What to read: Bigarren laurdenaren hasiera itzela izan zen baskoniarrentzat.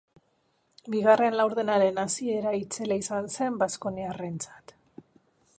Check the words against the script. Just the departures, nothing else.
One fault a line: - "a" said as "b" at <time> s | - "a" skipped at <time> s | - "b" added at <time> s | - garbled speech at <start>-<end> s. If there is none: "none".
none